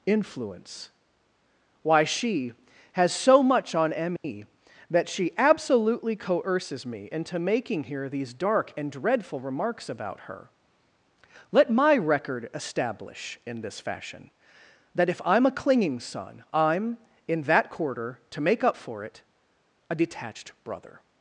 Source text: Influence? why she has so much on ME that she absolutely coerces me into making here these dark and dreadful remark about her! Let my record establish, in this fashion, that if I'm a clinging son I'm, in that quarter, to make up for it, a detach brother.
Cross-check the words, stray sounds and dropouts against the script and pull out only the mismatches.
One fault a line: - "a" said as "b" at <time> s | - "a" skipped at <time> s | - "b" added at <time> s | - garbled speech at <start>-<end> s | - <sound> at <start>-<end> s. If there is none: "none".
- dropout at 4.2-4.2 s
- "remark" said as "remarks" at 9.4 s
- "detach" said as "detached" at 19.9 s